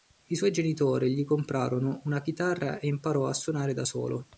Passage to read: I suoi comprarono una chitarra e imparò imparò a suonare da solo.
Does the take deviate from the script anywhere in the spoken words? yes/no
yes